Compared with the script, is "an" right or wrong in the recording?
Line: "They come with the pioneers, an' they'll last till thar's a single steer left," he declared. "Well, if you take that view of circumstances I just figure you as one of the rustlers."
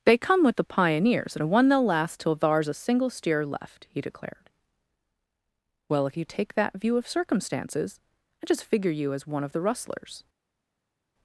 wrong